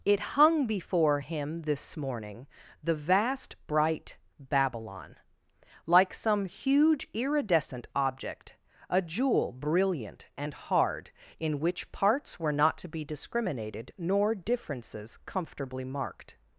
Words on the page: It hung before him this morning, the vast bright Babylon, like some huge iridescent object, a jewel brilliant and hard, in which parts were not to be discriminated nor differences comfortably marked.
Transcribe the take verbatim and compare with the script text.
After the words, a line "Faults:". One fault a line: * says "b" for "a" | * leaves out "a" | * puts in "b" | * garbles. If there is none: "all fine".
It hung before him this morning, the vast bright Babylon, like some huge iridescent object, a jewel brilliant and hard, in which parts were not to be discriminated nor differences comfortably marked.
Faults:
all fine